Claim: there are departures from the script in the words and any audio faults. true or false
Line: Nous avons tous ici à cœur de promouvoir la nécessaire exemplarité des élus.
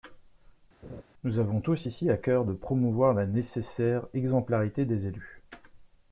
true